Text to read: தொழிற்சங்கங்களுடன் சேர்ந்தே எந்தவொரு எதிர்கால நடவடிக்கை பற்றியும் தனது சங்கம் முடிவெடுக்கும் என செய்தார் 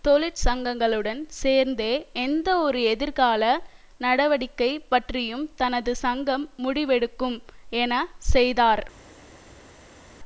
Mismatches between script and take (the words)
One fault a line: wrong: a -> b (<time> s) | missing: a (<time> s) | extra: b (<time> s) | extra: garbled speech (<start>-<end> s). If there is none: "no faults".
no faults